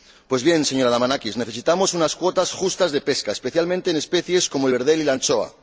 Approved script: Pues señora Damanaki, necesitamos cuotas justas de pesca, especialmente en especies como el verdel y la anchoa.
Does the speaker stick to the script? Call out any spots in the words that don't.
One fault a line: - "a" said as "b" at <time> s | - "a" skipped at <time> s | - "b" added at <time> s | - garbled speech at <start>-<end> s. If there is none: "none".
- "bien" added at 0.4 s
- "unas" added at 1.9 s